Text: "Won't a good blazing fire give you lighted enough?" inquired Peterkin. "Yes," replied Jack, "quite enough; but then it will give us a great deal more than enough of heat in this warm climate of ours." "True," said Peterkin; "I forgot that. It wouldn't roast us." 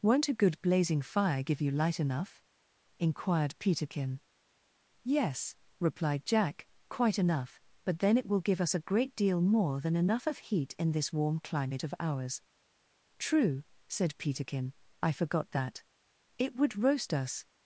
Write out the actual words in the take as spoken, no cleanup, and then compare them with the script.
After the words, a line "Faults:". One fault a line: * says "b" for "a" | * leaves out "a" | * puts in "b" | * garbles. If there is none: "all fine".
"Won't a good blazing fire give you light enough?" inquired Peterkin. "Yes," replied Jack, "quite enough; but then it will give us a great deal more than enough of heat in this warm climate of ours." "True," said Peterkin; "I forgot that. It would roast us."
Faults:
* says "light" for "lighted"
* says "would" for "wouldn't"